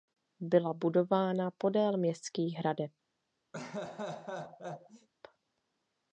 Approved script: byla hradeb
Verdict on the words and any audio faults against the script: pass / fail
fail